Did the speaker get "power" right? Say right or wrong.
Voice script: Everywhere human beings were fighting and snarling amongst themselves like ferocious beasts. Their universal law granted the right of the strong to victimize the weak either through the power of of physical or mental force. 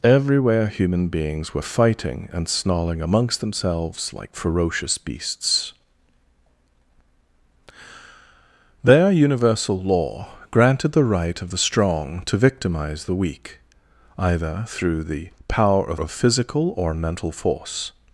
right